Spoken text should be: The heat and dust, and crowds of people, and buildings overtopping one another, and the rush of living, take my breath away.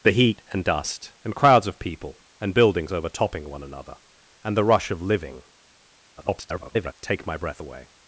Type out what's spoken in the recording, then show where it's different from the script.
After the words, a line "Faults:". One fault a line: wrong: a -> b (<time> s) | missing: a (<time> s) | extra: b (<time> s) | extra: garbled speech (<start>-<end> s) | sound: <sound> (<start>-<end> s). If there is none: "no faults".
The heat and dust, and crowds of people, and buildings overtopping one another, and the rush of living, [garbled] take my breath away.
Faults:
extra: garbled speech (6.2-6.9 s)